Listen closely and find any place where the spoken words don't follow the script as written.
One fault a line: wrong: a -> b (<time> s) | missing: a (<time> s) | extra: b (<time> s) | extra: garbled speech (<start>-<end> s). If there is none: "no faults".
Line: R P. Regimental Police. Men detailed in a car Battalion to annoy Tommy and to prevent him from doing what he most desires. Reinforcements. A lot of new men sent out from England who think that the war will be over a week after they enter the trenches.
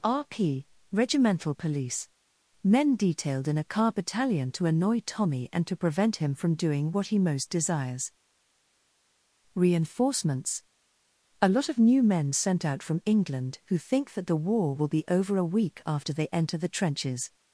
no faults